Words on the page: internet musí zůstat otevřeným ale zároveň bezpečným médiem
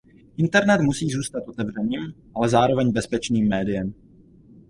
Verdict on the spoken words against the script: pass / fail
pass